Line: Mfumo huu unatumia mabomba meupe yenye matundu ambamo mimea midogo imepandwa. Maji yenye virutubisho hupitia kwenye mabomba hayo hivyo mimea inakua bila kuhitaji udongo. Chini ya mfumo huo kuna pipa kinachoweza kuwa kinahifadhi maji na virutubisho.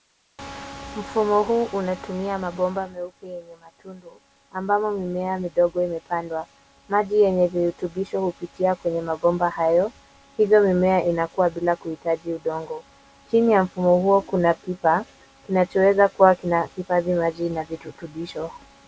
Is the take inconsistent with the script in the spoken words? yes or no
no